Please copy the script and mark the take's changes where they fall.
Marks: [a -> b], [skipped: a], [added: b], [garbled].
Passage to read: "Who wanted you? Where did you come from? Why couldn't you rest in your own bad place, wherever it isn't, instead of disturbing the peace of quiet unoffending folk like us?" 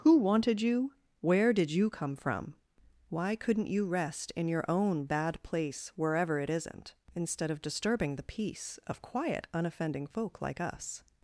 "Who wanted you? Where did you come from? Why couldn't you rest in your own bad place, wherever it isn't, instead of disturbing the peace of quiet unoffending folk like us?"